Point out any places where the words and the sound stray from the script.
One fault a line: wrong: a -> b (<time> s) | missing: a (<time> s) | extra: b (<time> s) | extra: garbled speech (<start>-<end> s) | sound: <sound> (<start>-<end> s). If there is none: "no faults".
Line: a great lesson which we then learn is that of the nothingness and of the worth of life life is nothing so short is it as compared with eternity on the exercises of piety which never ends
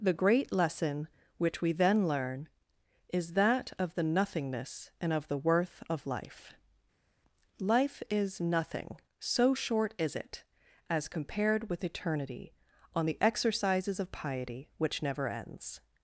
wrong: a -> the (0.0 s)